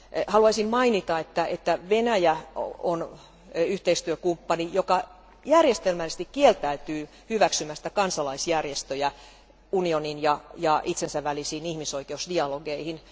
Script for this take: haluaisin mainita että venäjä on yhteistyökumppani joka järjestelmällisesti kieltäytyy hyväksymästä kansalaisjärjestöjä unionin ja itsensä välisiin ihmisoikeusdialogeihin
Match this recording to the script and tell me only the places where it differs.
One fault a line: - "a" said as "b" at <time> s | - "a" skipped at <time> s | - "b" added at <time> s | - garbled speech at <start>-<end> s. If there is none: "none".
none